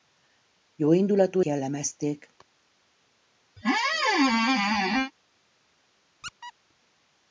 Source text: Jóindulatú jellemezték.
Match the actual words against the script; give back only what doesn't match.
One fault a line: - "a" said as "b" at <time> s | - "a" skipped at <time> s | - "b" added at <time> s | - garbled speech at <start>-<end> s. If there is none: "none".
none